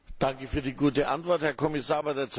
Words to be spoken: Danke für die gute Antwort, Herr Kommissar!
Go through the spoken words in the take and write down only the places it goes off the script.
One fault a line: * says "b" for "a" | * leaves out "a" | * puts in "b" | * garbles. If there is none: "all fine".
all fine